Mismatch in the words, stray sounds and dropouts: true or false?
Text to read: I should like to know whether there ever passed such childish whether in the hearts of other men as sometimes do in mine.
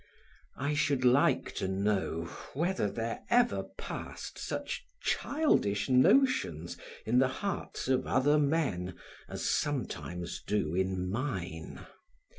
true